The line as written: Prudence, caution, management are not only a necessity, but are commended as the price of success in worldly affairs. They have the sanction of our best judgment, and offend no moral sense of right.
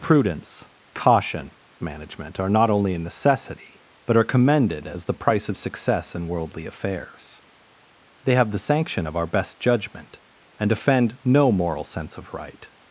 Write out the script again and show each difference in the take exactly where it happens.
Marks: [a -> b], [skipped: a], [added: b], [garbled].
Prudence, caution, management are not only a necessity, but are commended as the price of success in worldly affairs. They have the sanction of our best judgment, and offend no moral sense of right.